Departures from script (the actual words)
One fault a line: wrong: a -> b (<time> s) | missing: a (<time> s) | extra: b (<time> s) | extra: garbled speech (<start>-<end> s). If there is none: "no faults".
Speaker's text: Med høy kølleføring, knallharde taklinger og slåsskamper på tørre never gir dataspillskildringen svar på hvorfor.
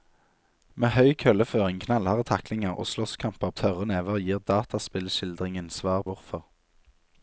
missing: på (3.5 s)
missing: på (6.0 s)